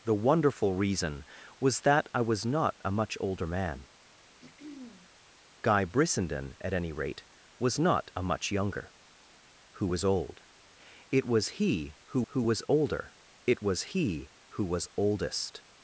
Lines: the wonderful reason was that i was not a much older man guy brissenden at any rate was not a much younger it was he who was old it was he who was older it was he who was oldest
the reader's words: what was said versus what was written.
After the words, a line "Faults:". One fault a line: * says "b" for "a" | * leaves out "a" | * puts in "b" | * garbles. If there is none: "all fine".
the wonderful reason was that i was not a much older man guy brissenden at any rate was not a much younger who was old it was he who who was older it was he who was oldest
Faults:
* leaves out "it was he"
* puts in "who"